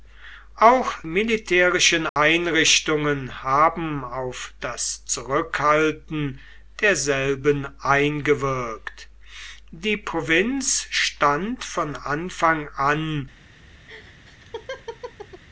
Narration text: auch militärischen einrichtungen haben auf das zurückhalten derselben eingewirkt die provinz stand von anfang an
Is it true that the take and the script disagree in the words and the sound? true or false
true